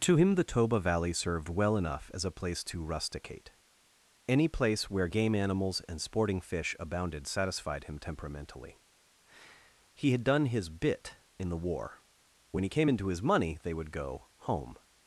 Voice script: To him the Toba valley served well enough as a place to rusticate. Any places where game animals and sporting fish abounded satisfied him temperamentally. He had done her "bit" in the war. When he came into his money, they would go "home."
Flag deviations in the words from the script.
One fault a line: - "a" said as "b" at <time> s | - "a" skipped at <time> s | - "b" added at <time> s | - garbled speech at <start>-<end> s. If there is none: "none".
- "places" said as "place" at 4.5 s
- "her" said as "his" at 10.4 s